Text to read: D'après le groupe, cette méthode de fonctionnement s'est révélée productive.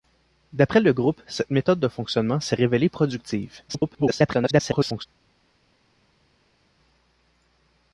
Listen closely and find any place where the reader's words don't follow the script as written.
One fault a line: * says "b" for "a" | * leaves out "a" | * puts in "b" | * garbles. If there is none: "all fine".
* garbles